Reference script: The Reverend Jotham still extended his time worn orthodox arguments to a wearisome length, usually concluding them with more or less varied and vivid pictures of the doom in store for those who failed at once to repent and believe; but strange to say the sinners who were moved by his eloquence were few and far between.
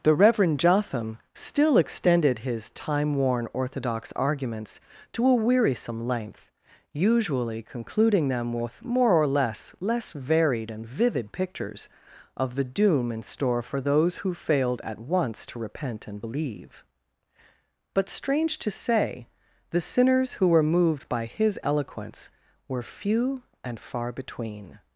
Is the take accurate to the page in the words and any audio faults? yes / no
no